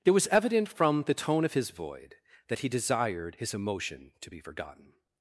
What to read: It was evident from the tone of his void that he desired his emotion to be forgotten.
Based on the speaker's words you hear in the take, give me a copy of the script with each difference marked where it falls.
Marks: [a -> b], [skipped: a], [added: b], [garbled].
It was evident from the tone of his void that he desired his emotion to be forgotten.